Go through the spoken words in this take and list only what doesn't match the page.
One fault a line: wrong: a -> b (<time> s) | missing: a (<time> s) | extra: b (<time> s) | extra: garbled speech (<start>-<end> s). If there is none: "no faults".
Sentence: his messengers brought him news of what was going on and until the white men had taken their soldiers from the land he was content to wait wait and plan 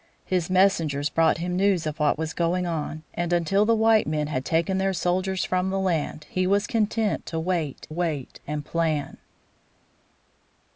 no faults